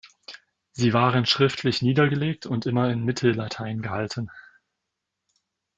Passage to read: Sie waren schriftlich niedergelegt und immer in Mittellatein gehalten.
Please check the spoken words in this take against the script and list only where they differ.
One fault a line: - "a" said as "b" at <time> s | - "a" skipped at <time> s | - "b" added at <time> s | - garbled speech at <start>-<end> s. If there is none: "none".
none